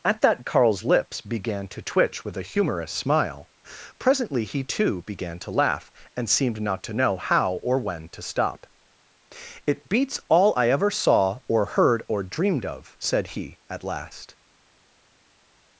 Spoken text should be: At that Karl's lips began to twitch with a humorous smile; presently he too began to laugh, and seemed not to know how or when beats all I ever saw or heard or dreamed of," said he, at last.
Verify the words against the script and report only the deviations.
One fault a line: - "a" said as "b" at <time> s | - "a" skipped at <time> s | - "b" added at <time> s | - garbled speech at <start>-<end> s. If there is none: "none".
- "to stop It" added at 8.1 s